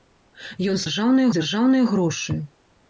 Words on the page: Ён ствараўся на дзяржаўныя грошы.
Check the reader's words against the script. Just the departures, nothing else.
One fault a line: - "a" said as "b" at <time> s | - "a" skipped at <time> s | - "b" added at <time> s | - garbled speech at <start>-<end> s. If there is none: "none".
- "ствараўся" said as "дзяржаўныя" at 0.8 s